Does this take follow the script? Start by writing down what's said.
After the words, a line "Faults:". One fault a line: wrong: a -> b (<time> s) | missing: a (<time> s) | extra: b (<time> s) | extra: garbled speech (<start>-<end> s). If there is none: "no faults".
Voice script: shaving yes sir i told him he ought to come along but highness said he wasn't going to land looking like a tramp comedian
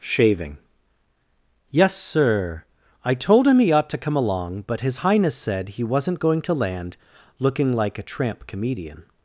shaving yes sir i told him he ought to come along but his highness said he wasn't going to land looking like a tramp comedian
Faults:
extra: his (4.8 s)